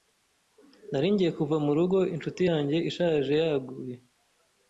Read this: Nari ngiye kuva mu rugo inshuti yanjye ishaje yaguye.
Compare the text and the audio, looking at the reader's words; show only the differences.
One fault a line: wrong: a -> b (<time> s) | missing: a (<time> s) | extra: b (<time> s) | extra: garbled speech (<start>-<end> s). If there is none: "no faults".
no faults